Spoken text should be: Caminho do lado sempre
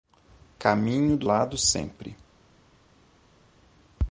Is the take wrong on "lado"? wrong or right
right